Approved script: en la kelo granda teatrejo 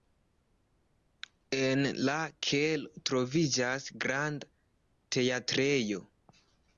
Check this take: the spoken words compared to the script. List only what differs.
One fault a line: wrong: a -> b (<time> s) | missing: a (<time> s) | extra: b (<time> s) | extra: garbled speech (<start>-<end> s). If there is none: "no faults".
extra: troviĝas (3.1 s)